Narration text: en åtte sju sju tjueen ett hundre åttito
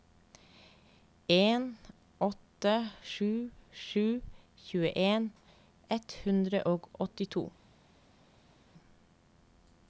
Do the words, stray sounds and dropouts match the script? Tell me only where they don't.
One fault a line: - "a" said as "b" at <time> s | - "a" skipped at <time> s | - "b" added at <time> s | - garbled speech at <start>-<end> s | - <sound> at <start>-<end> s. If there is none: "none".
- "og" added at 6.7 s